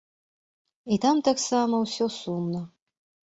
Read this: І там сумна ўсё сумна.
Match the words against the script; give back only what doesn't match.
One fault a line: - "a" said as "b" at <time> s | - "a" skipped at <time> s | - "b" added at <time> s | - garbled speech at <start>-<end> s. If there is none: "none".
- "сумна" said as "таксама" at 1.3 s